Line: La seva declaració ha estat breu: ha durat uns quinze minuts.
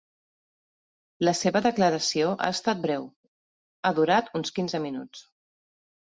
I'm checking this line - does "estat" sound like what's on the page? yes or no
yes